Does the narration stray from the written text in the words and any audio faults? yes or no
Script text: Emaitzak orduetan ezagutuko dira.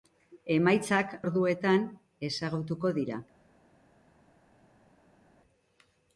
no